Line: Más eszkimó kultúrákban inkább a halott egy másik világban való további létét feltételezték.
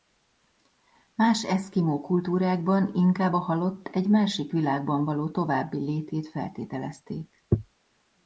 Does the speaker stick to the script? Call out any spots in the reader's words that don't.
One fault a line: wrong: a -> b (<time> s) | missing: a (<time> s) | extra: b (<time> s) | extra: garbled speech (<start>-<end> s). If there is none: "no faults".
no faults